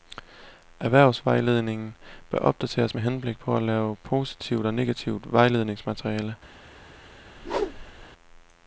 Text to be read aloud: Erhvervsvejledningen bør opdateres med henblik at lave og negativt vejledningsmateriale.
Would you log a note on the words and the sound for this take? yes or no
yes